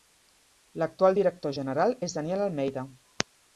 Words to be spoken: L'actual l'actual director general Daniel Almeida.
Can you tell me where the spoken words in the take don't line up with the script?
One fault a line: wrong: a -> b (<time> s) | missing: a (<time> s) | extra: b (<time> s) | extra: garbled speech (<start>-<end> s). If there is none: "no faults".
missing: l'actual (1.2 s)
extra: és (2.1 s)